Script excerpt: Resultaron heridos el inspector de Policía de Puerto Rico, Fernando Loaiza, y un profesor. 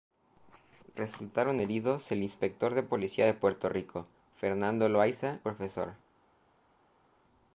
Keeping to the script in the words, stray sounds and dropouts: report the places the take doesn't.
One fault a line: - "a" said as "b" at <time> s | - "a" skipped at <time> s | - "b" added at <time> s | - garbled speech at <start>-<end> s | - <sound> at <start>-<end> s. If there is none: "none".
- "y un" skipped at 5.4 s